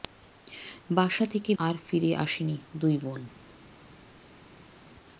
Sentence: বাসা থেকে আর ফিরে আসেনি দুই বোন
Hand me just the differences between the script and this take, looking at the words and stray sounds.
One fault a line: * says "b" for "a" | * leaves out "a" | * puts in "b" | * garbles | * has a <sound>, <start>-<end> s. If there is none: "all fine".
all fine